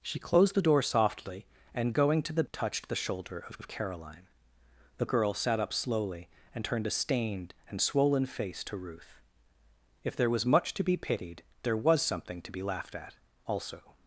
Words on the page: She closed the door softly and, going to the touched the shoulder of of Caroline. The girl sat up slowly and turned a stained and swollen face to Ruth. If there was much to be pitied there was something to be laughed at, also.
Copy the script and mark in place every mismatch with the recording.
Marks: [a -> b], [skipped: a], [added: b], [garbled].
She closed the door softly and, going to the touched the shoulder of of Caroline. The girl sat up slowly and turned a stained and swollen face to Ruth. If there was much to be pitied there was something to be laughed at, also.